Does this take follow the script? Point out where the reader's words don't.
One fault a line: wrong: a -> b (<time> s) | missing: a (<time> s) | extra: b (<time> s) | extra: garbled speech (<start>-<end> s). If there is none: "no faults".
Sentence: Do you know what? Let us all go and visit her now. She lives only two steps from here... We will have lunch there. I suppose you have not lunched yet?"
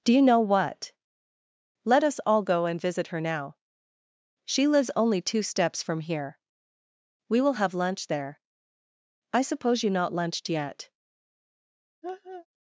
missing: have (9.9 s)